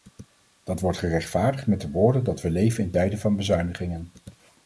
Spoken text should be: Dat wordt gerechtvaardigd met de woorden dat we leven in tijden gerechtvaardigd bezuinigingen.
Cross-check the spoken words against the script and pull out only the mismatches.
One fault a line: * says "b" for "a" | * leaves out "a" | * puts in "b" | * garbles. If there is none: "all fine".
* says "van" for "gerechtvaardigd"